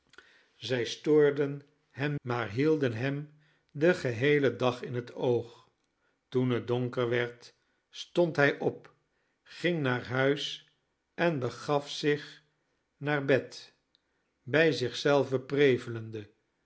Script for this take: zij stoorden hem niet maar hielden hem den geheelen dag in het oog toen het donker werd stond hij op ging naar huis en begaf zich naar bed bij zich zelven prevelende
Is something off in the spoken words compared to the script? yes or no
yes